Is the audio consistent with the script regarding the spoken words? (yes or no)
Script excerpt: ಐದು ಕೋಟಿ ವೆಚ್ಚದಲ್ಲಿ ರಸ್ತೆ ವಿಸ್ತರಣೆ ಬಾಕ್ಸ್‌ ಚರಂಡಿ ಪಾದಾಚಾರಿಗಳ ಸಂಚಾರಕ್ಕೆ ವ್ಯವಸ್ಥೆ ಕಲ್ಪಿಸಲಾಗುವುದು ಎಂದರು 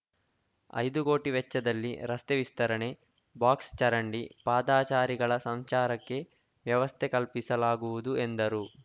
yes